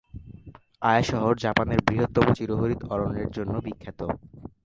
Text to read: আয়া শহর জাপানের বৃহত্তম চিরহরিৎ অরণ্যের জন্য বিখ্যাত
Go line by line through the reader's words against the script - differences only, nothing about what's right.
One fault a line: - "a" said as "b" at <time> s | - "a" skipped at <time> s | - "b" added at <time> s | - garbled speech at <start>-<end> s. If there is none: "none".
none